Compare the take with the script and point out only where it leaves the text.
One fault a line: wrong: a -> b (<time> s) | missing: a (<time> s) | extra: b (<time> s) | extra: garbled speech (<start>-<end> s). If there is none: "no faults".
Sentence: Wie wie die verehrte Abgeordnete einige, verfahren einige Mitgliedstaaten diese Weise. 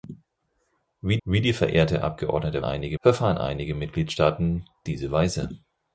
no faults